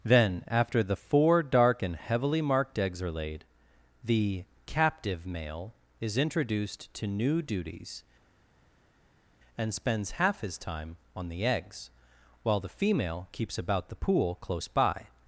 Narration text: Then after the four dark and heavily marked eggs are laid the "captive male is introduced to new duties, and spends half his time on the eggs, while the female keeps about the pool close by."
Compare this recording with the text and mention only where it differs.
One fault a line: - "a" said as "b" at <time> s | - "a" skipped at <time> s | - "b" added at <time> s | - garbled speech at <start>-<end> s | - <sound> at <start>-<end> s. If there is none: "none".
none